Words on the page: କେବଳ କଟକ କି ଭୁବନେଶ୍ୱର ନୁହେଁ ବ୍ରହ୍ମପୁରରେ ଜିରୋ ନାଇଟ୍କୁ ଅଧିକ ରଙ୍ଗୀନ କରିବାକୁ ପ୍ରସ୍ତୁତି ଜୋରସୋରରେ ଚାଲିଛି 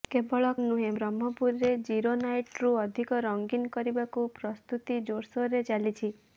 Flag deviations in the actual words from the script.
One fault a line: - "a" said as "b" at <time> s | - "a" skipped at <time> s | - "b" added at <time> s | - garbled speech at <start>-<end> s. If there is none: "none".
- "କଟକ କି ଭୁବନେଶ୍ୱର" skipped at 0.5 s